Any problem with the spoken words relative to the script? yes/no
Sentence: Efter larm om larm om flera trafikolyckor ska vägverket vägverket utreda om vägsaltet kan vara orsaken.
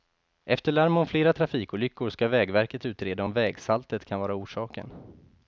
yes